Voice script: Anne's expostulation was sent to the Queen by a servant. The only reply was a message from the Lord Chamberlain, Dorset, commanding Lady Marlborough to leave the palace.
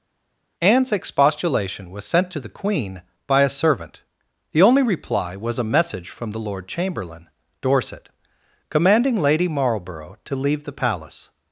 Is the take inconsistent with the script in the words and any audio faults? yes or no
no